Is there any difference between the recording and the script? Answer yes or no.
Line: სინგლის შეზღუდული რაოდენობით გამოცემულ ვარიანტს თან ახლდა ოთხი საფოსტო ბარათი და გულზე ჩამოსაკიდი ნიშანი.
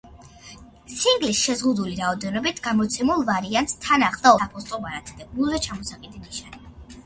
yes